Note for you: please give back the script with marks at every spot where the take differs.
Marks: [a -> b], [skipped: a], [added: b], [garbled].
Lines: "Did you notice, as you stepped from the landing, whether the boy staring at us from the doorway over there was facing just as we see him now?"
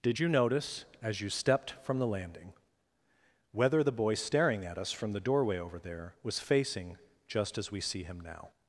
"Did you notice, as you stepped from the landing, whether the boy staring at us from the doorway over there was facing just as we see him now?"